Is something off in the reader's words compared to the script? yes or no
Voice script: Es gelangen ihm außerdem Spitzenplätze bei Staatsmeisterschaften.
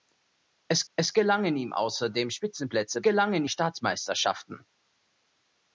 yes